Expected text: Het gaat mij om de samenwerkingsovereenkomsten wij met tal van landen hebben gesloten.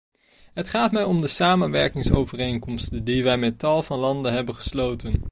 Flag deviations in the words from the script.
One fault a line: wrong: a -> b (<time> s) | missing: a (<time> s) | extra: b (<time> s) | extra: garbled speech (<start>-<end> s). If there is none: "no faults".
extra: die (3.0 s)